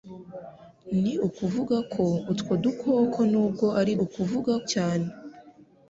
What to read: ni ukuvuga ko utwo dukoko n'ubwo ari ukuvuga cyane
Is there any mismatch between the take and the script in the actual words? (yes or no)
no